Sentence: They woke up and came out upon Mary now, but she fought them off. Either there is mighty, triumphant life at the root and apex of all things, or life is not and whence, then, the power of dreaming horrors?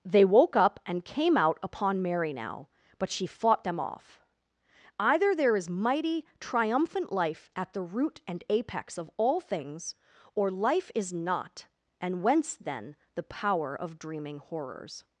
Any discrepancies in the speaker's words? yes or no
no